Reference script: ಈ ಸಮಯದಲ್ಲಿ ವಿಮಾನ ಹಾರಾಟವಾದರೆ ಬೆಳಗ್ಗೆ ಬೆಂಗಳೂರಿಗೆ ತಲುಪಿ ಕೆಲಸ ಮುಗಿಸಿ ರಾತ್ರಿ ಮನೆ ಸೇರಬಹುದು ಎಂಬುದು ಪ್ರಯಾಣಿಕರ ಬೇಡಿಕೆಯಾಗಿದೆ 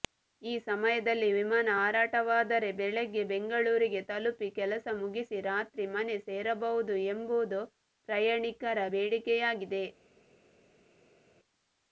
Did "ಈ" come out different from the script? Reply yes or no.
no